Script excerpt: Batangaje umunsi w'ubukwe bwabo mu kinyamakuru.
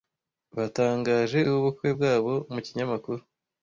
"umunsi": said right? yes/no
no